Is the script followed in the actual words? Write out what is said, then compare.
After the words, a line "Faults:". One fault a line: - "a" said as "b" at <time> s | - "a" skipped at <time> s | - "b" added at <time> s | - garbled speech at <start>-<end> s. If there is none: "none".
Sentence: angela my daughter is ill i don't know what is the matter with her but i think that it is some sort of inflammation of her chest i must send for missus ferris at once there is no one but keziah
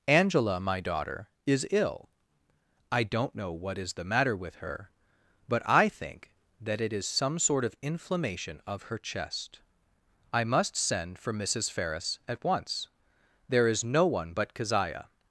angela my daughter is ill i don't know what is the matter with her but i think that it is some sort of inflammation of her chest i must send for missus ferris at once there is no one but keziah
Faults:
none